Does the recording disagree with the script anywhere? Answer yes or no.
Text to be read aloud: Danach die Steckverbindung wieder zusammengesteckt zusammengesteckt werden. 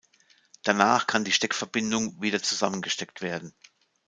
yes